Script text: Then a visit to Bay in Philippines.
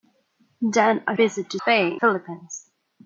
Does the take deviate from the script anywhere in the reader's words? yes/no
no